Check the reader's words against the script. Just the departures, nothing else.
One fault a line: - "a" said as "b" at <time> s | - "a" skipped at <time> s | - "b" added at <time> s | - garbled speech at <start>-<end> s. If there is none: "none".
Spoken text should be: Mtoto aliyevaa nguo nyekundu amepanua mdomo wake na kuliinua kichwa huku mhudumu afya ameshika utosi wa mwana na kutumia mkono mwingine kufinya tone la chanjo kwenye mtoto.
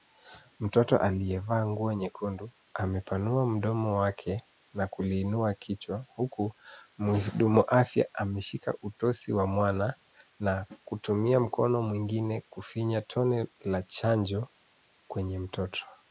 none